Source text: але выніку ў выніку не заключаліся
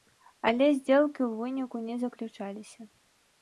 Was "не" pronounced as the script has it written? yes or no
yes